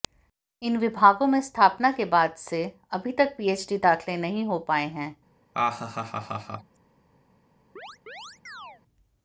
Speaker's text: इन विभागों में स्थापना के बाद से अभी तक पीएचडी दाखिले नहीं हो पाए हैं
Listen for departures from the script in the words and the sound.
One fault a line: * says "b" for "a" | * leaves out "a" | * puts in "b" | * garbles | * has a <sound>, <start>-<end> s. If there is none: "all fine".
* has a laugh, 5.5-6.8 s
* has a chirp, 7.8-8.8 s